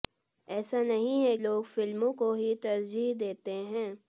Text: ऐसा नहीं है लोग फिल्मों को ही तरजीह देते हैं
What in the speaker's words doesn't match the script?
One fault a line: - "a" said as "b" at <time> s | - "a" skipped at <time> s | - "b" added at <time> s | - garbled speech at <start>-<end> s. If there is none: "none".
none